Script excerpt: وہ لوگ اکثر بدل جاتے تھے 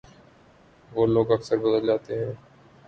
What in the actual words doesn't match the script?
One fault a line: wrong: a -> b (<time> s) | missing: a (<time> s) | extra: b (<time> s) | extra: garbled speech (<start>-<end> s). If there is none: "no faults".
wrong: تھے -> ہیں (2.2 s)